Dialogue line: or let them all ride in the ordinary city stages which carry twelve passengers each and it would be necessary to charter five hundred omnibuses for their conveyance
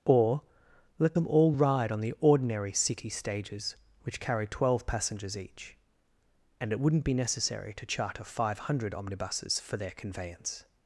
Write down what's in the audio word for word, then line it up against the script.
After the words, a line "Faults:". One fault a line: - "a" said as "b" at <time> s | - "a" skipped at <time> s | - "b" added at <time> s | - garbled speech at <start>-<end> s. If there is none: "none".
or let them all ride on the ordinary city stages which carry twelve passengers each and it wouldn't be necessary to charter five hundred omnibuses for their conveyance
Faults:
- "in" said as "on" at 1.9 s
- "would" said as "wouldn't" at 6.8 s